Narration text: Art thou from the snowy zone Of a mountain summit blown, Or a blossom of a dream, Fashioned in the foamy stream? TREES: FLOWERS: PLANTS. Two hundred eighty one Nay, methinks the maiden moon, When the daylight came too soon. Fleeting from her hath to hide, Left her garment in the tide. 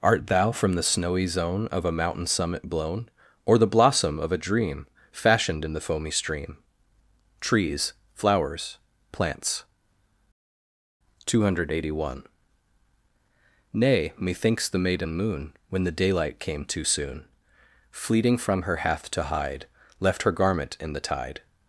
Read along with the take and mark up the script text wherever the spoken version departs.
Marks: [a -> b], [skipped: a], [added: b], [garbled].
Art thou from the snowy zone Of a mountain summit blown, Or [a -> the] blossom of a dream, Fashioned in the foamy stream? TREES: FLOWERS: PLANTS. Two hundred eighty one Nay, methinks the maiden moon, When the daylight came too soon. Fleeting from her hath to hide, Left her garment in the tide.